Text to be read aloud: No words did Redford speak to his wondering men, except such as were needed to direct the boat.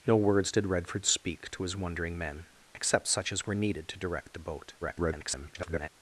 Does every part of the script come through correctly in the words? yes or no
no